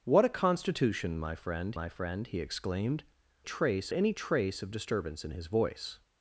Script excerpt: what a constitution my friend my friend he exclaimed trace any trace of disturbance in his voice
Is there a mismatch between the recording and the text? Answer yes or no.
no